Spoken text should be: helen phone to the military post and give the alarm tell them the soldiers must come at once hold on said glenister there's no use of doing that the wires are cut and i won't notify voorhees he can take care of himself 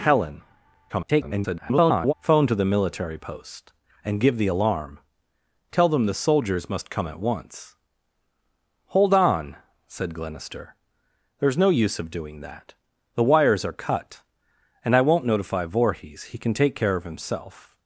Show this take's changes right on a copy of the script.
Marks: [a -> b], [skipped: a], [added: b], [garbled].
helen [garbled] phone to the military post and give the alarm tell them the soldiers must come at once hold on said glenister there's no use of doing that the wires are cut and i won't notify voorhees he can take care of himself